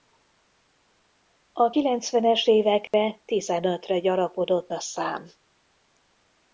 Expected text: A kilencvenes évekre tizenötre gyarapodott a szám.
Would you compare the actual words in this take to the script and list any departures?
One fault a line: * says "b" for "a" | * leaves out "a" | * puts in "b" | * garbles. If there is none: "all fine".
all fine